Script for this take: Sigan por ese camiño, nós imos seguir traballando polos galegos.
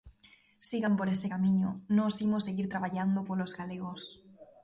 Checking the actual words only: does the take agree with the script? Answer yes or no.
yes